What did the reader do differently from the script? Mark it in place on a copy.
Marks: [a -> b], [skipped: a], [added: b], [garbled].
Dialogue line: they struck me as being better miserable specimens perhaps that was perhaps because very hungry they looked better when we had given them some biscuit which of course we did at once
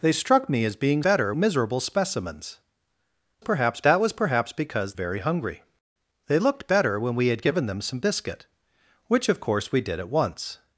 they struck me as being better miserable specimens perhaps that was perhaps because very hungry they looked better when we had given them some biscuit which of course we did at once